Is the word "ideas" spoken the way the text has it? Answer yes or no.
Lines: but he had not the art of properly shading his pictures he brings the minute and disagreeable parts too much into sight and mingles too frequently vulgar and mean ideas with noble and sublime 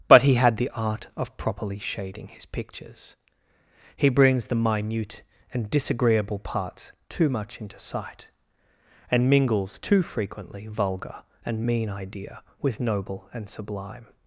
no